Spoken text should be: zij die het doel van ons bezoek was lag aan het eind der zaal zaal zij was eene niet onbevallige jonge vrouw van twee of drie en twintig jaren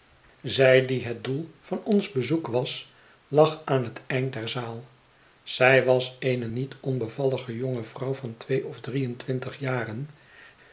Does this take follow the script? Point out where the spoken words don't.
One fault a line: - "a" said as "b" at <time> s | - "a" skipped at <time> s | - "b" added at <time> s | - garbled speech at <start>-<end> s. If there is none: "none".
- "zaal" skipped at 4.9 s